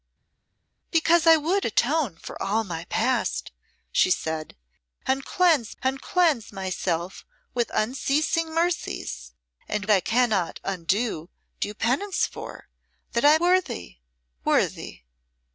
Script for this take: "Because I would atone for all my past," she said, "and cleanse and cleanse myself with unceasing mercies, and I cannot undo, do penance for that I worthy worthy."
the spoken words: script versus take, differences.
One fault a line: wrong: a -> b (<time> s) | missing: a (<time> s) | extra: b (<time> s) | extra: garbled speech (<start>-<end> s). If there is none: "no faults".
no faults